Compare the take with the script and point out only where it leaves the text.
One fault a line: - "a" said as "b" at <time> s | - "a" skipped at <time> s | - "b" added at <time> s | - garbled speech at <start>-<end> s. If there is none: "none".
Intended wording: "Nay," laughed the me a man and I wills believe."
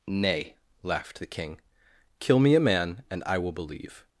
- "king kill" added at 1.2 s
- "wills" said as "will" at 3.4 s